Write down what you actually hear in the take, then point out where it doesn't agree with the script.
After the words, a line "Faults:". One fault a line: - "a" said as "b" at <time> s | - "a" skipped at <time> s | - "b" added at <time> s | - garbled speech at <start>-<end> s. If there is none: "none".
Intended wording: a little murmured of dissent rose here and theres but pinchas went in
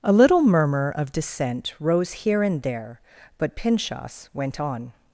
a little murmur of dissent rose here and there but pinchas went on
Faults:
- "murmured" said as "murmur" at 0.4 s
- "theres" said as "there" at 2.6 s
- "in" said as "on" at 4.6 s